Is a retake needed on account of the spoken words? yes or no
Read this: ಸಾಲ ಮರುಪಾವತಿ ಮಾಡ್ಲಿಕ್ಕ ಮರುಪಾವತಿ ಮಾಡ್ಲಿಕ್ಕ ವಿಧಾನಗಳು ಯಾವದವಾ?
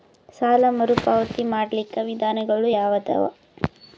yes